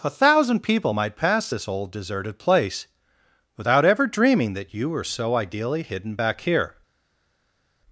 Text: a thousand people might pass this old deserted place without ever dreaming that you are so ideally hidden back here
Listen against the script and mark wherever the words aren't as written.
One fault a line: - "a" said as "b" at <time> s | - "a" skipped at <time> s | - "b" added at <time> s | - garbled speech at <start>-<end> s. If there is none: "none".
- "are" said as "were" at 4.9 s